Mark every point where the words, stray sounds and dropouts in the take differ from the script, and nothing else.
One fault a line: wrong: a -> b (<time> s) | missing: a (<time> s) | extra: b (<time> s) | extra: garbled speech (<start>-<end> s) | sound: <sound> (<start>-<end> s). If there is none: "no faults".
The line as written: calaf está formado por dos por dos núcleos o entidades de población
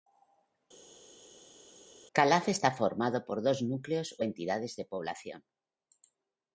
missing: por dos (3.6 s)